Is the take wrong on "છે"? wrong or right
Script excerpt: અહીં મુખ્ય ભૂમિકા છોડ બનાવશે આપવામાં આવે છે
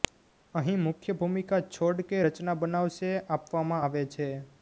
right